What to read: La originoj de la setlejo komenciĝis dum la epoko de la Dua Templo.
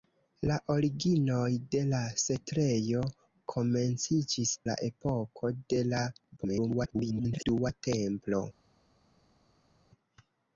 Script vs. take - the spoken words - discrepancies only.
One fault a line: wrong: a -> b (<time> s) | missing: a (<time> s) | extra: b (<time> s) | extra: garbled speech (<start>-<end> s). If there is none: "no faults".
missing: dum (4.5 s)
extra: garbled speech (6.4-7.5 s)